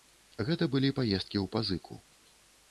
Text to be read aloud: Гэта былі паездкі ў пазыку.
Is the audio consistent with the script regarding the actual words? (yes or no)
yes